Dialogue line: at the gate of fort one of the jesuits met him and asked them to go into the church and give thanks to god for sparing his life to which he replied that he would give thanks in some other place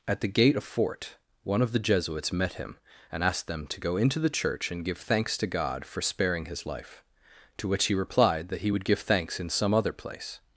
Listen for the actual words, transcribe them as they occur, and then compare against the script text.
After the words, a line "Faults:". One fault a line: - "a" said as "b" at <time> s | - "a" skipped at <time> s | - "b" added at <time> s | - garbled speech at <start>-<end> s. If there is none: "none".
at the gate of fort one of the jesuits met him and asked them to go into the church and give thanks to god for sparing his life to which he replied that he would give thanks in some other place
Faults:
none